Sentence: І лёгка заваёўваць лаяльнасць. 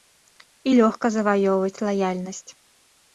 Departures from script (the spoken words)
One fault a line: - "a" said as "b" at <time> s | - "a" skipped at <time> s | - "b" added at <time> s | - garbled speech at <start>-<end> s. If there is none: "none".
none